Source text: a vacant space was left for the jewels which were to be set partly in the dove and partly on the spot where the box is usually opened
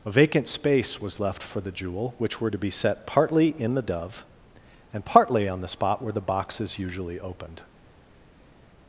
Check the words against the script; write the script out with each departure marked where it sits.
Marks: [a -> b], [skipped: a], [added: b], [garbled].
a vacant space was left for the [jewels -> jewel] which were to be set partly in the dove and partly on the spot where the box is usually opened